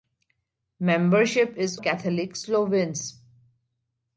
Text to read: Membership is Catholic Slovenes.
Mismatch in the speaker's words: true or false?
false